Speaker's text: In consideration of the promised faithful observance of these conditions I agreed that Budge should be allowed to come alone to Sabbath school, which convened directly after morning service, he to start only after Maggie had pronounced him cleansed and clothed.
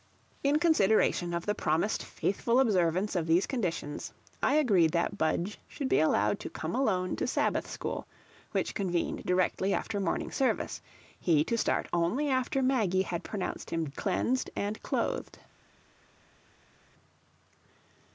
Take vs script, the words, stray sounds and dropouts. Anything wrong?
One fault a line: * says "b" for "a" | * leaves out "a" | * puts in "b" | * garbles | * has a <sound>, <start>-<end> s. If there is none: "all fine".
all fine